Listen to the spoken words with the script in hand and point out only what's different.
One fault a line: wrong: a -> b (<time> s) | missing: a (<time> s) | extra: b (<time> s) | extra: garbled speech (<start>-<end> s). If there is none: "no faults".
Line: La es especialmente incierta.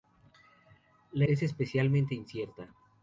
no faults